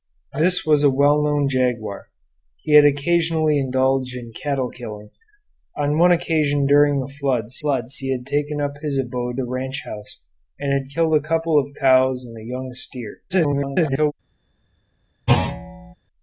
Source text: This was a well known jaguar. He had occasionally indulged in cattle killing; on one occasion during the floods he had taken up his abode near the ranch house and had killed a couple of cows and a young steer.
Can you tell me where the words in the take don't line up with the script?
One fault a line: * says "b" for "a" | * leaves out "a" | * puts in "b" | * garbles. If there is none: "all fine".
* puts in "floods"
* leaves out "near"
* garbles